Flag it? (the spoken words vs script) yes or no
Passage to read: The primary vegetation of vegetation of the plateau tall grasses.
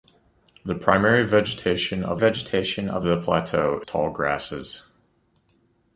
no